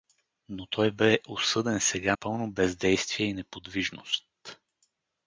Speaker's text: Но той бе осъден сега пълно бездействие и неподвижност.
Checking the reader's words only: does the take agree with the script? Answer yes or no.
yes